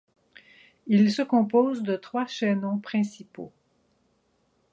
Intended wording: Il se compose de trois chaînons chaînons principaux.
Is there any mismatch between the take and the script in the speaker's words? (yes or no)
yes